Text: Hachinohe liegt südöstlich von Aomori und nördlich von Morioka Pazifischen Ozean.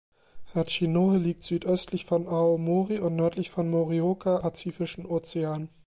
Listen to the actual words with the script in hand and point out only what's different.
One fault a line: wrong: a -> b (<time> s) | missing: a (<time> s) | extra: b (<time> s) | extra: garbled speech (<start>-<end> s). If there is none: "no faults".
no faults